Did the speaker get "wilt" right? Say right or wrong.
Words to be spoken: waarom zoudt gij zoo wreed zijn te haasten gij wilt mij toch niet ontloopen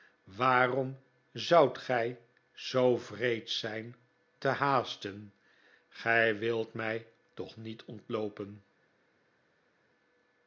right